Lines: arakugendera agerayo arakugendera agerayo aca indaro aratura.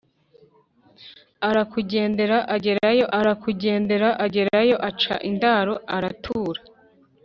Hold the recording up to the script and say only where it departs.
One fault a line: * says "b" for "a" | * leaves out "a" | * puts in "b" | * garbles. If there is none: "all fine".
all fine